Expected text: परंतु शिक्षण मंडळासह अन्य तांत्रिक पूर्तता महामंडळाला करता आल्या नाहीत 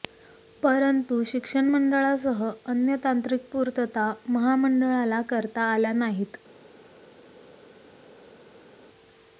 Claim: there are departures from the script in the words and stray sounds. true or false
false